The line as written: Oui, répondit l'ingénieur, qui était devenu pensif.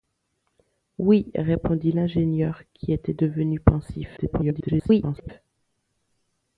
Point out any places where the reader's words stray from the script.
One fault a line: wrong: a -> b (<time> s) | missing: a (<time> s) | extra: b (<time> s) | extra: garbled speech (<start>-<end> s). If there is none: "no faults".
extra: garbled speech (4.2-5.3 s)